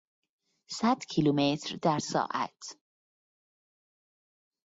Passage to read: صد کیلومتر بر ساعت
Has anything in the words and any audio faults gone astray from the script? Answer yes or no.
yes